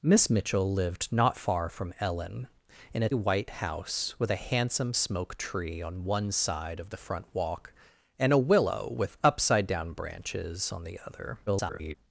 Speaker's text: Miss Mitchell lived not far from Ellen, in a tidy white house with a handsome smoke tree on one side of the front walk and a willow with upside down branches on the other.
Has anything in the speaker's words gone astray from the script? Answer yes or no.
yes